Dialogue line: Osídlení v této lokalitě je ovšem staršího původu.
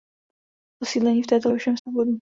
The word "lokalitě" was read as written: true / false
false